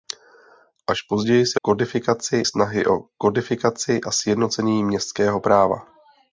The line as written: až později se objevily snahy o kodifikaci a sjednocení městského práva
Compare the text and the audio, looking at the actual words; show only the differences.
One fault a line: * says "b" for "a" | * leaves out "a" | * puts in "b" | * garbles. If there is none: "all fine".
* says "kodifikaci" for "objevily"